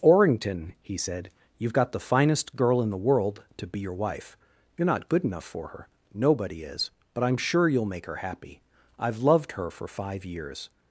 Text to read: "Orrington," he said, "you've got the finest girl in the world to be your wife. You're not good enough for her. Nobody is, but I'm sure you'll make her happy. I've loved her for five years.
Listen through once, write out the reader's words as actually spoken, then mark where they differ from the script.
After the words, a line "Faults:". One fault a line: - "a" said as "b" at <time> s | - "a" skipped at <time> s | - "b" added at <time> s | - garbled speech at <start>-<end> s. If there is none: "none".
"Orrington," he said, "you've got the finest girl in the world to be your wife. You're not good enough for her. Nobody is, but I'm sure you'll make her happy. I've loved her for five years.
Faults:
none